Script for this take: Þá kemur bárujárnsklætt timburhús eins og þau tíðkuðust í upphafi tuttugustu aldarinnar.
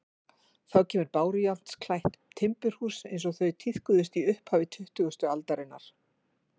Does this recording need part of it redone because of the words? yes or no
no